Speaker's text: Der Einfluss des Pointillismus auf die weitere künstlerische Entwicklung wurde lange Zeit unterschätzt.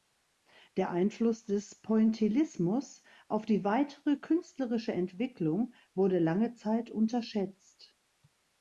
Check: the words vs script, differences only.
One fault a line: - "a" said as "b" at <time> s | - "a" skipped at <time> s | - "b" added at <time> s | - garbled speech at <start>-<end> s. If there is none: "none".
none